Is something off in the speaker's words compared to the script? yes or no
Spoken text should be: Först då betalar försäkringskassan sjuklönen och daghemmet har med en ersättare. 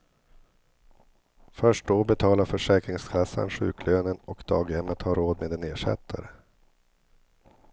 yes